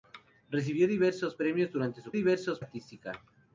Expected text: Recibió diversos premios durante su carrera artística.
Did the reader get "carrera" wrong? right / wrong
wrong